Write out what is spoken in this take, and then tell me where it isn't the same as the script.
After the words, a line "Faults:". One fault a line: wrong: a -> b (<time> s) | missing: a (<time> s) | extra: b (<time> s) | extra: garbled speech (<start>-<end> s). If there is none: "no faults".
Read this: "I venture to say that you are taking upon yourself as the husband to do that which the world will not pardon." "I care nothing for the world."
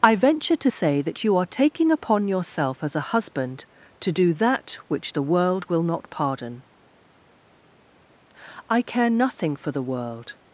"I venture to say that you are taking upon yourself as a husband to do that which the world will not pardon." "I care nothing for the world."
Faults:
wrong: the -> a (2.9 s)